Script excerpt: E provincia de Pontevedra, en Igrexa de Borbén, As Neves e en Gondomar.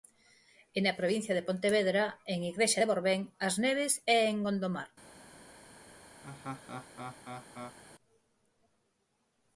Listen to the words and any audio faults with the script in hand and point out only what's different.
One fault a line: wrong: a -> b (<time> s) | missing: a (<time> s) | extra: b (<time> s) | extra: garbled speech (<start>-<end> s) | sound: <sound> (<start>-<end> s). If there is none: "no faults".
extra: na (0.8 s)
sound: laugh (6.2-7.8 s)